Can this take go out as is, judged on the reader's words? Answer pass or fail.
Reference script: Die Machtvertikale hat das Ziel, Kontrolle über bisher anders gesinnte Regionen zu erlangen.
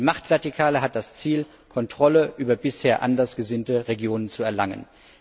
pass